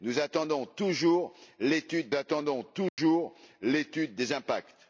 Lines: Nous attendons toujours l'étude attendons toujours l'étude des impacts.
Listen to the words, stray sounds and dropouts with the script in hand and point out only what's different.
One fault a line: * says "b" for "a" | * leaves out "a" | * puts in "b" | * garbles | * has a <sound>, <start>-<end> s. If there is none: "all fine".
* has a dropout, 2.9-3.0 s